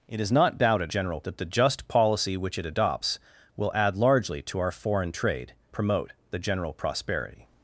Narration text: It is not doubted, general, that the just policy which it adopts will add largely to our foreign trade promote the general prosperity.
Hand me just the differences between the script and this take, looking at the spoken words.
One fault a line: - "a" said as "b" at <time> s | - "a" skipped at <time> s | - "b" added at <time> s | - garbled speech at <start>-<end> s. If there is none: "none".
none